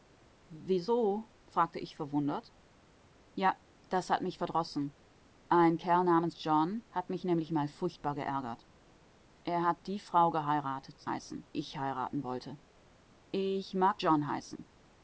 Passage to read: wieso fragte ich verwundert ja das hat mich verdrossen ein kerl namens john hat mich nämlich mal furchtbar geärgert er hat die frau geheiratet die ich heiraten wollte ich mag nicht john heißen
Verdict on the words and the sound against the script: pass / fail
fail